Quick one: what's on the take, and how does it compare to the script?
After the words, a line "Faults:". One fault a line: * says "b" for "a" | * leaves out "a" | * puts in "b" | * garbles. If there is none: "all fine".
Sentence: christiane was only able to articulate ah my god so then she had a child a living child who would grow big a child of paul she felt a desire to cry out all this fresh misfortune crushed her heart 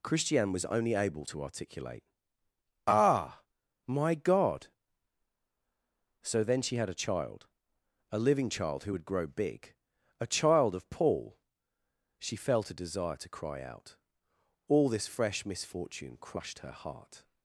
christiane was only able to articulate ah my god so then she had a child a living child who would grow big a child of paul she felt a desire to cry out all this fresh misfortune crushed her heart
Faults:
all fine